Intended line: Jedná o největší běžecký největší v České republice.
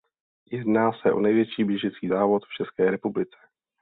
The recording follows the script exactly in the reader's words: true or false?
false